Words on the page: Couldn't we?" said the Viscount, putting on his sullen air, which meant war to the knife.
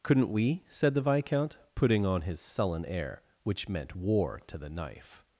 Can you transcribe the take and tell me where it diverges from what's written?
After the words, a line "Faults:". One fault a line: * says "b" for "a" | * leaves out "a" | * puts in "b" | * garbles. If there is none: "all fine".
Couldn't we?" said the Viscount, putting on his sullen air, which meant war to the knife.
Faults:
all fine